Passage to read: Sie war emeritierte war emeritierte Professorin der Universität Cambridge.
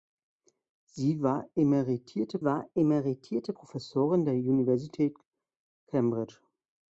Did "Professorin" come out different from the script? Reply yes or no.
no